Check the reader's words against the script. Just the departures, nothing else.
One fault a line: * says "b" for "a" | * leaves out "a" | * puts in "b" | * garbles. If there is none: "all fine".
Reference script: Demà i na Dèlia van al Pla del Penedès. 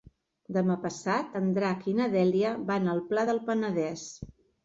* puts in "passat en Drac"